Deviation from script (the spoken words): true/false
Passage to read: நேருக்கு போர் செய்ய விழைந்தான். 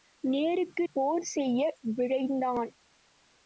false